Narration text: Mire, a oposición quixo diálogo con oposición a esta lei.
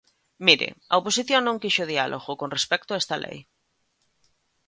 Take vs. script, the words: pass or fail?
fail